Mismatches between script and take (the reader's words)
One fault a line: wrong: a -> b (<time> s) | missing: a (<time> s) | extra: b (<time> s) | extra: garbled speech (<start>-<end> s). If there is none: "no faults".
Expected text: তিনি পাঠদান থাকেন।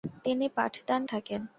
no faults